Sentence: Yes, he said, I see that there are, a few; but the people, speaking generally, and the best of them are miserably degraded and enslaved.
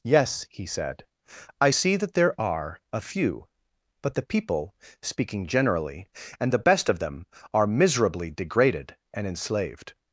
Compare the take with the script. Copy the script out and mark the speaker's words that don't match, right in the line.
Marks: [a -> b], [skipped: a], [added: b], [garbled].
Yes, he said, I see that there are, a few; but the people, speaking generally, and the best of them are miserably degraded and enslaved.